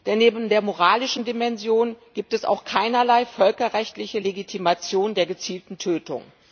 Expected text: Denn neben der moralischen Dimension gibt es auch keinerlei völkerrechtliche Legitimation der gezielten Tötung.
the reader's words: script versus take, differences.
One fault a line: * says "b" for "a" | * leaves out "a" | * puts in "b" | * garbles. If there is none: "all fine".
all fine